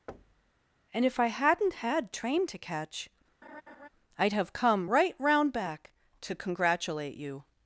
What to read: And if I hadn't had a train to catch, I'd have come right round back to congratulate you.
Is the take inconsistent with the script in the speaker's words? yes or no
yes